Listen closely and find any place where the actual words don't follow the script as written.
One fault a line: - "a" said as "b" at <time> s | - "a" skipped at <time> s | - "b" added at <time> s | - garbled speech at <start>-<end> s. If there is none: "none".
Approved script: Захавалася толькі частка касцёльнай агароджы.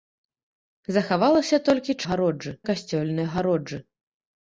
- "частка" said as "агароджы" at 2.1 s